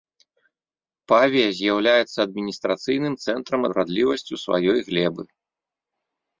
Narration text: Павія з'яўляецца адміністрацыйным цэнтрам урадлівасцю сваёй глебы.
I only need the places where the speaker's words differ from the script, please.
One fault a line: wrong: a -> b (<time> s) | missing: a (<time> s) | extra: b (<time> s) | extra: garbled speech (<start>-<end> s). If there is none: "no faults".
no faults